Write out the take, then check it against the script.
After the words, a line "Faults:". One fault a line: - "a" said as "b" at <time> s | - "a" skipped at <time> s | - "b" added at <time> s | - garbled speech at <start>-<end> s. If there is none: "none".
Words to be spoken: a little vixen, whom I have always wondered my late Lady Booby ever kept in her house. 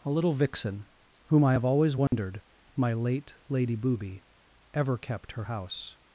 a little vixen, whom I have always wondered my late Lady Booby ever kept her house.
Faults:
- "in" skipped at 5.3 s